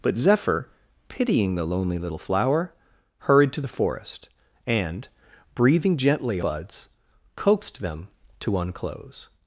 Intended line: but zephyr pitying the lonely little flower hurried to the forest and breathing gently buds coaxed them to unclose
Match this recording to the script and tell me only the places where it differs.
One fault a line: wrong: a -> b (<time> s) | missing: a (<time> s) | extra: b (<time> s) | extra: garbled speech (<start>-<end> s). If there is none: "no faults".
no faults